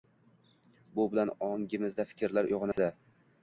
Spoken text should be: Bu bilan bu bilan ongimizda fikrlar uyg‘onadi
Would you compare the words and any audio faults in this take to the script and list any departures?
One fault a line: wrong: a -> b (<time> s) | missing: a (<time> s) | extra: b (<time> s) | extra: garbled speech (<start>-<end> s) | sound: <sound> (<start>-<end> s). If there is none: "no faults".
missing: bu bilan (1.3 s)
sound: dropout (2.7-2.8 s)